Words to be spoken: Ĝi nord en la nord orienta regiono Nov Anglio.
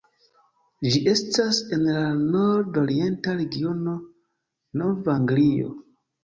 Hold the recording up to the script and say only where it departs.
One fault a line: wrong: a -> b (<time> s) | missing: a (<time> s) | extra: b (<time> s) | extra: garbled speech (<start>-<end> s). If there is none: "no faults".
wrong: nord -> estas (1.1 s)